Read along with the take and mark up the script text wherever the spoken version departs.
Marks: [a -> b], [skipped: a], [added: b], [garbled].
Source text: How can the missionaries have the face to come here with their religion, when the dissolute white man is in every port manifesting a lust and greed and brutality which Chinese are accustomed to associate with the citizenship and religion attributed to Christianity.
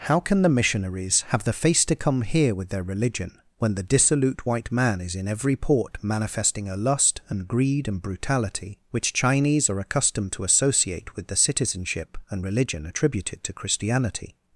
How can the missionaries have the face to come here with their religion, when the dissolute white man is in every port manifesting a lust and greed and brutality which Chinese are accustomed to associate with the citizenship and religion attributed to Christianity.